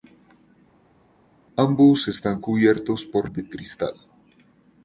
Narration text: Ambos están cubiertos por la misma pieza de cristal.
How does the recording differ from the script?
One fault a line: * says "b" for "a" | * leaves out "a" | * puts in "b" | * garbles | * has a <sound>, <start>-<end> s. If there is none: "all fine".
* leaves out "la misma pieza"